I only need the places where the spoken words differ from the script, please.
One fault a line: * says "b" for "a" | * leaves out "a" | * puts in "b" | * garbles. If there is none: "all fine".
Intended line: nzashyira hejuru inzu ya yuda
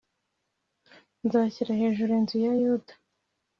all fine